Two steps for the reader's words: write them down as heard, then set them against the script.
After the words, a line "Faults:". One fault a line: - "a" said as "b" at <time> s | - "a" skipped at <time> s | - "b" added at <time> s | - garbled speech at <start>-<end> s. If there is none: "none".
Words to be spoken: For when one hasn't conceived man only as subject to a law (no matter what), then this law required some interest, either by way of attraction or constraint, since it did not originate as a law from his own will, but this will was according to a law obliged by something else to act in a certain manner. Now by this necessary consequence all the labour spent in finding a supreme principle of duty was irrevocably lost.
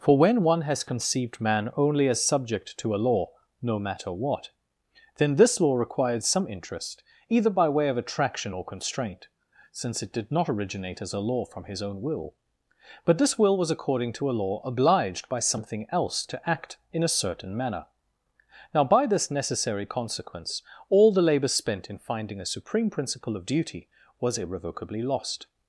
For when one has conceived man only as subject to a law (no matter what), then this law required some interest, either by way of attraction or constraint, since it did not originate as a law from his own will, but this will was according to a law obliged by something else to act in a certain manner. Now by this necessary consequence all the labour spent in finding a supreme principle of duty was irrevocably lost.
Faults:
- "hasn't" said as "has" at 0.6 s